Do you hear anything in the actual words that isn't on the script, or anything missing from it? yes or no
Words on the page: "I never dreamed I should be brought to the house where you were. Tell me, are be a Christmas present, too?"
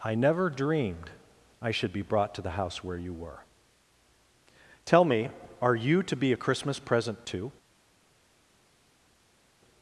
yes